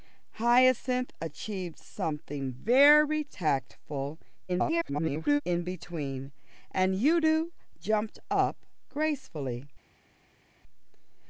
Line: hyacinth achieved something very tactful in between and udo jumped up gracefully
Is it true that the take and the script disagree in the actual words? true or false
true